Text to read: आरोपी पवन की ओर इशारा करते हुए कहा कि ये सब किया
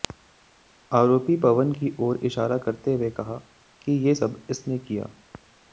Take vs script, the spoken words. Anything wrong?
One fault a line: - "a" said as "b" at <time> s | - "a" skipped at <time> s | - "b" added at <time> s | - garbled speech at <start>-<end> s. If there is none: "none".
- "इसने" added at 4.5 s